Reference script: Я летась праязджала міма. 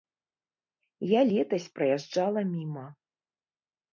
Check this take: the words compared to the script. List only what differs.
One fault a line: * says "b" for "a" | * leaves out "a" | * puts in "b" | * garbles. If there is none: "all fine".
all fine